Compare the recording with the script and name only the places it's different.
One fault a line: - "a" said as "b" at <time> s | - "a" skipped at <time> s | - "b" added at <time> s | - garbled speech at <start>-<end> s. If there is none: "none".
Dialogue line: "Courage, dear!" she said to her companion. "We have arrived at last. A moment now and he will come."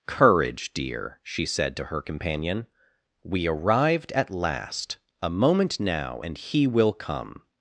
- "have" skipped at 3.5 s